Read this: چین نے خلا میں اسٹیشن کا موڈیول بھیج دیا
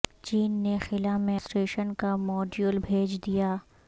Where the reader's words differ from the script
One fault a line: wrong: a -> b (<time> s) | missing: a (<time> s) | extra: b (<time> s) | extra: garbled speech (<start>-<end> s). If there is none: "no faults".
no faults